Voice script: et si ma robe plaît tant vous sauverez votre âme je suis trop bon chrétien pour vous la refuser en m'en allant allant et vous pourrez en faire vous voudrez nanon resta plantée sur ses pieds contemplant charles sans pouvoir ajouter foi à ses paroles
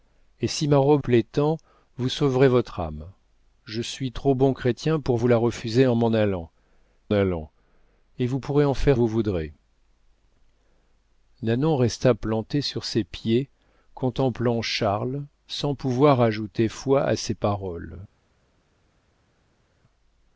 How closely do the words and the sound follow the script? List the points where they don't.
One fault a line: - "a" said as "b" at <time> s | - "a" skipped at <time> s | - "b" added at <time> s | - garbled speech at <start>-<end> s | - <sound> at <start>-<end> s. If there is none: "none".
none